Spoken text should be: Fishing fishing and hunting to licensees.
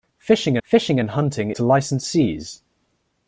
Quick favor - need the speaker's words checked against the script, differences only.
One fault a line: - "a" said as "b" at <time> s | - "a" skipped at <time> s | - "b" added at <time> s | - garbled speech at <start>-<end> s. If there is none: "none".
none